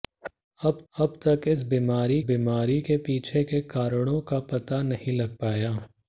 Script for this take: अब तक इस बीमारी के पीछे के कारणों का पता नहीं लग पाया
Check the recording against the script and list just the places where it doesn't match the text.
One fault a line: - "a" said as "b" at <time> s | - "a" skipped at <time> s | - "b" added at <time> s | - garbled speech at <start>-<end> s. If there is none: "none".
- "अब" added at 0.9 s
- "बीमारी" added at 2.2 s